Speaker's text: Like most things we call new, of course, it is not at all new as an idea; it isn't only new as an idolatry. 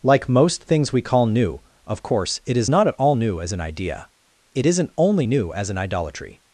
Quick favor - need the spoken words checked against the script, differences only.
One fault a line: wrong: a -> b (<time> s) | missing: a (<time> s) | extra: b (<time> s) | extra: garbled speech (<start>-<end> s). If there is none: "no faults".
no faults